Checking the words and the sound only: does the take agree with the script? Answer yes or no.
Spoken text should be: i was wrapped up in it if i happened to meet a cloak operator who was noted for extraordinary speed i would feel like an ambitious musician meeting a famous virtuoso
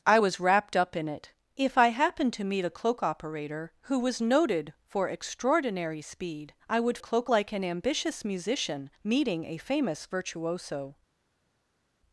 no